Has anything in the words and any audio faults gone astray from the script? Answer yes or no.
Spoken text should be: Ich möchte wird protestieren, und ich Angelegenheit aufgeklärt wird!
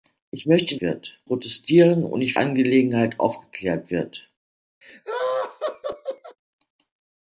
yes